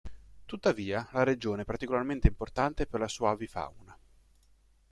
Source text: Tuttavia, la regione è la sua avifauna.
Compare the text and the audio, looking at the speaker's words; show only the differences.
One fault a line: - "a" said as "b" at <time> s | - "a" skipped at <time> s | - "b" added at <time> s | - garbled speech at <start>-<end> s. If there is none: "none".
- "particolarmente importante per" added at 1.6 s